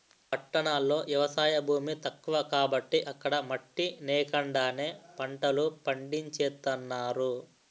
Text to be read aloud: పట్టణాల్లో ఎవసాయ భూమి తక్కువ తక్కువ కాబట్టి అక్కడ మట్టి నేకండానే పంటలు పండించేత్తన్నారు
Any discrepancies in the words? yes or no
yes